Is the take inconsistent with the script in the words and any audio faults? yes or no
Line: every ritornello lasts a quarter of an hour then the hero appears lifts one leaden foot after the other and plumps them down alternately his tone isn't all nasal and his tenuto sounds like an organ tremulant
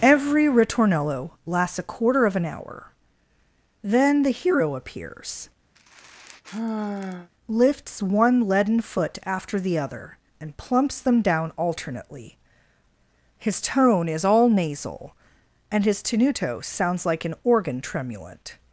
yes